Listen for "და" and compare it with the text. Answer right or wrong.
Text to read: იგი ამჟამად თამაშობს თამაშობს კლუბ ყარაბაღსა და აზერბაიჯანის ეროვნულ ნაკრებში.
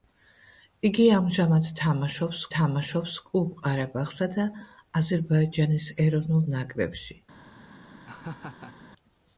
right